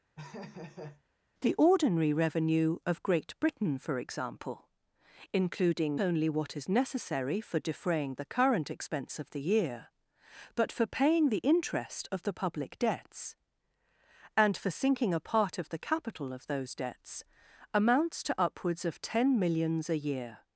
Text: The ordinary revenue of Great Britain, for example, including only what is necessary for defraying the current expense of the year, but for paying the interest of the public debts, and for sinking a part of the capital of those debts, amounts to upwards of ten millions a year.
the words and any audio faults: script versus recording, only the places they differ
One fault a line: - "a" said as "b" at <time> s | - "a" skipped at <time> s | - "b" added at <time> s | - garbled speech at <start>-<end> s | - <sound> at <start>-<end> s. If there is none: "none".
- laugh at 0.2-1.0 s